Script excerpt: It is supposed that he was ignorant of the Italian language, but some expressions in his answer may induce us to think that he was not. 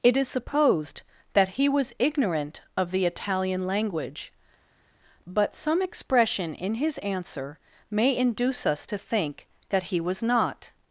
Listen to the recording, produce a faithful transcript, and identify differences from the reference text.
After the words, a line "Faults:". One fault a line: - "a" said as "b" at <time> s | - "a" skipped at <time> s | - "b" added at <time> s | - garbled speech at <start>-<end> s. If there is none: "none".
It is supposed that he was ignorant of the Italian language, but some expression in his answer may induce us to think that he was not.
Faults:
- "expressions" said as "expression" at 5.8 s